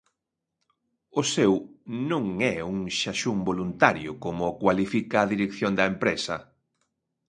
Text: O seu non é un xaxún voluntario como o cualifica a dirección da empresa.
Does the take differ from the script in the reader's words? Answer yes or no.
no